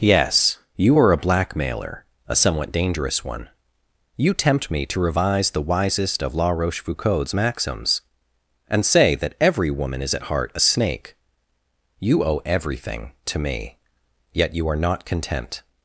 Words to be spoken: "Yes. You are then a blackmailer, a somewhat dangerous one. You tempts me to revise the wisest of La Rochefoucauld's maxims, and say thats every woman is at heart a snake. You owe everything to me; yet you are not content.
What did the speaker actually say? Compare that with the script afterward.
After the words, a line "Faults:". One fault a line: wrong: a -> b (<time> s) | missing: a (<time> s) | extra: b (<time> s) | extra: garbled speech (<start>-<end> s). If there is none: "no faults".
"Yes. You are a blackmailer, a somewhat dangerous one. You tempt me to revise the wisest of La Rochefoucauld's maxims, and say that every woman is at heart a snake. You owe everything to me; yet you are not content.
Faults:
missing: then (1.1 s)
wrong: tempts -> tempt (4.3 s)
wrong: thats -> that (9.2 s)